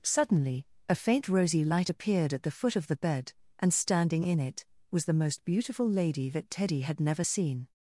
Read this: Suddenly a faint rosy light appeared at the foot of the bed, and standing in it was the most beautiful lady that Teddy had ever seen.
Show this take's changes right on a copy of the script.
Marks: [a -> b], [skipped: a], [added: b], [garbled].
Suddenly a faint rosy light appeared at the foot of the bed, and standing in it was the most beautiful lady that Teddy had [ever -> never] seen.